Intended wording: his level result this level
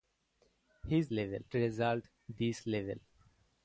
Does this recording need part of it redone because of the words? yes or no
no